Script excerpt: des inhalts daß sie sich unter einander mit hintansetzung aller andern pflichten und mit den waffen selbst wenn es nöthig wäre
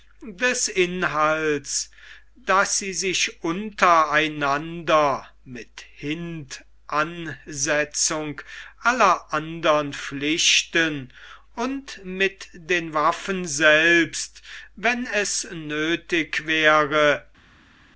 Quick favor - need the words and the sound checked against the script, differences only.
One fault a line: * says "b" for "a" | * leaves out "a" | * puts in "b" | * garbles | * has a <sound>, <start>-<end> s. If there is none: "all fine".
all fine